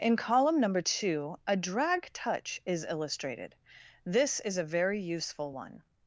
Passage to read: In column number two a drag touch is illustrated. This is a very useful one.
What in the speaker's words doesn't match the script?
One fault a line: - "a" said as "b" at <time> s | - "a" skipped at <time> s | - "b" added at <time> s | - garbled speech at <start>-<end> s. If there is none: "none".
none